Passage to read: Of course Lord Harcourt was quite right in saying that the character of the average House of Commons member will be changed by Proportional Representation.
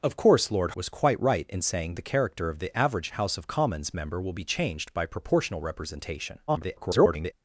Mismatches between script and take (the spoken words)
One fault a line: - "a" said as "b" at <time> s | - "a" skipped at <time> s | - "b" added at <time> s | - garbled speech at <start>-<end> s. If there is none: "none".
- "Harcourt" skipped at 0.7 s
- "that" skipped at 2.0 s
- garbled speech at 6.5-7.3 s